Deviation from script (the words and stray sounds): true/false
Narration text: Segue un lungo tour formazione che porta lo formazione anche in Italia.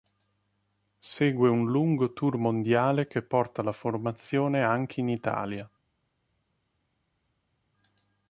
true